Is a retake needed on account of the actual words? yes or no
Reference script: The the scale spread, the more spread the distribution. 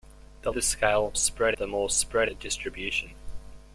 no